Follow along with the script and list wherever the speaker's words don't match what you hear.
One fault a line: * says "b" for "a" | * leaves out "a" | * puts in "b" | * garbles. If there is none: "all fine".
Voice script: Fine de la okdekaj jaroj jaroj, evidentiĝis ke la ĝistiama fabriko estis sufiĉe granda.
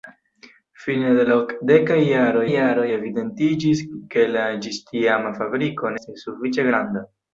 all fine